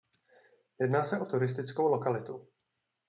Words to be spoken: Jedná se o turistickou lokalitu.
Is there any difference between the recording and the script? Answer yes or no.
no